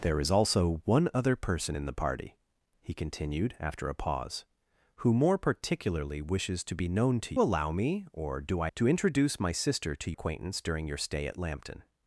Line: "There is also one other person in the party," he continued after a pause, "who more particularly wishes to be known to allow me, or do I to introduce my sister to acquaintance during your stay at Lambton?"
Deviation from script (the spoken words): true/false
false